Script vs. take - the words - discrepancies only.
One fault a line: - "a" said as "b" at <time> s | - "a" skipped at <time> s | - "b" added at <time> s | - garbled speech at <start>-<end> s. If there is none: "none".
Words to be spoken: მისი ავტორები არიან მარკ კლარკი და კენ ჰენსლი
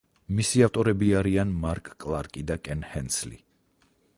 none